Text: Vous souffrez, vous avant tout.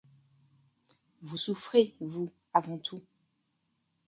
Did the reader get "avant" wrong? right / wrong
right